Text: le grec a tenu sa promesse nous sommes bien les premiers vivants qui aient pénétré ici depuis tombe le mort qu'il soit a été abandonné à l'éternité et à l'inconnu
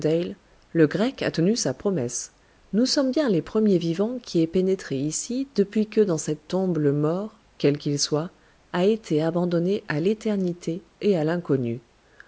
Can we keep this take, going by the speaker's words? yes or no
no